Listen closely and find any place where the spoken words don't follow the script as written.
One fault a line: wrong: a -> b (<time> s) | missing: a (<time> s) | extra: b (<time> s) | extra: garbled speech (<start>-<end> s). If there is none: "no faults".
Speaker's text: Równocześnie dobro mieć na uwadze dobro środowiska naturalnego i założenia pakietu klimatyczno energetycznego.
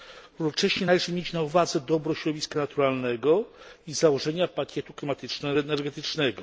wrong: dobro -> należy (0.8 s)